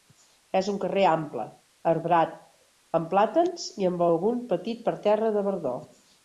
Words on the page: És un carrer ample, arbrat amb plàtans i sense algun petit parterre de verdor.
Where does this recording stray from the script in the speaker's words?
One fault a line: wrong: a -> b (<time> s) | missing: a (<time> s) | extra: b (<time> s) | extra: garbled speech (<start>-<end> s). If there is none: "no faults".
wrong: sense -> amb (3.9 s)